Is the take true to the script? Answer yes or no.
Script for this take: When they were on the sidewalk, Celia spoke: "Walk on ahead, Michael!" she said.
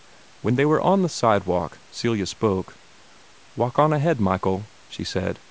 yes